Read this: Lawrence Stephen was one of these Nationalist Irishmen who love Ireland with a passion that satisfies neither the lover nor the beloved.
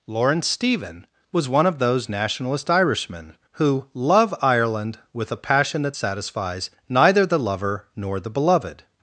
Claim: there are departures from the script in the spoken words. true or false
true